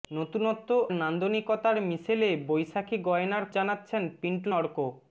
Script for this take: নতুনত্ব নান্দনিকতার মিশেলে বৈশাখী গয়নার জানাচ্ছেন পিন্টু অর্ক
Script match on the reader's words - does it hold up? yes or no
yes